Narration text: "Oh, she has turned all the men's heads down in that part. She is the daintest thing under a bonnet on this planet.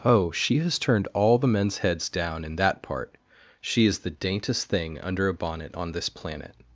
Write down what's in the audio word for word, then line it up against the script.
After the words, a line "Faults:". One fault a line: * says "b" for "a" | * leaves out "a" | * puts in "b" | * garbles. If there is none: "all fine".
"Oh, she has turned all the men's heads down in that part. She is the daintest thing under a bonnet on this planet.
Faults:
all fine